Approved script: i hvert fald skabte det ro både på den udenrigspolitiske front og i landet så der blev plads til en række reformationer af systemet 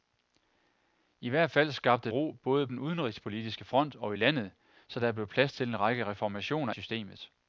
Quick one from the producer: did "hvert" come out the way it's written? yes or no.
yes